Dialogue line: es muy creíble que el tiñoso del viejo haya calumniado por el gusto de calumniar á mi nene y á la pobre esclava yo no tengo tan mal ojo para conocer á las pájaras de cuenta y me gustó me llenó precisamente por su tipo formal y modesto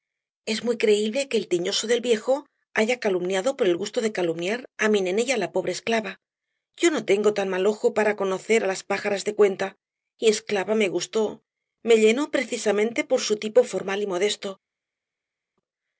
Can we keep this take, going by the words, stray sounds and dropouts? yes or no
no